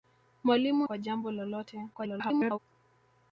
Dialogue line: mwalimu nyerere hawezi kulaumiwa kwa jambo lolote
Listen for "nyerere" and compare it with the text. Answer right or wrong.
wrong